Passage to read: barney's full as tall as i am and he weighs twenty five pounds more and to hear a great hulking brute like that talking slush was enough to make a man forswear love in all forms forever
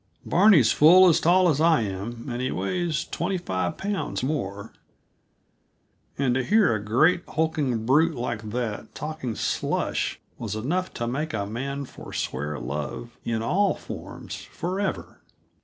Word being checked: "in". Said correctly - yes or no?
yes